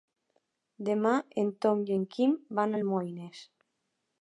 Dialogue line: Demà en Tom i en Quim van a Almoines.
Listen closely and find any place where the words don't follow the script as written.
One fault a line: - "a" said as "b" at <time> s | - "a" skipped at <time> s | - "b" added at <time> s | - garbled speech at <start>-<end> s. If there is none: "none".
none